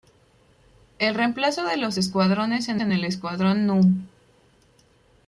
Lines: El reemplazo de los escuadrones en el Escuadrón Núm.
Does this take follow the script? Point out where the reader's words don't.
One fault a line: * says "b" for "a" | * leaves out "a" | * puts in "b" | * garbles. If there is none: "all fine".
* puts in "en"